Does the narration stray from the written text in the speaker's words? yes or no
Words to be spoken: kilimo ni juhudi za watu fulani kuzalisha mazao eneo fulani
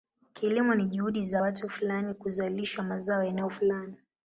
no